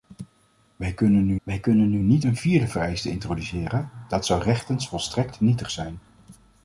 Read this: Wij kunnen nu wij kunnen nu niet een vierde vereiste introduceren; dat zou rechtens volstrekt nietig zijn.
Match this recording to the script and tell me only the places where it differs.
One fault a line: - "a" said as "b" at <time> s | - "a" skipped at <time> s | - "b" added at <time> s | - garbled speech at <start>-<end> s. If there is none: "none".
none